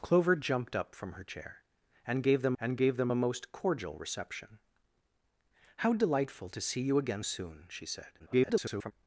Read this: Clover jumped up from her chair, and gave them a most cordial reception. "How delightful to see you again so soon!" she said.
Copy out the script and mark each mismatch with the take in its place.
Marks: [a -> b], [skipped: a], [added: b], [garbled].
Clover jumped up from her chair, and gave them [added: and gave them] a most cordial reception. "How delightful to see you again [skipped: so] soon!" she said. [garbled]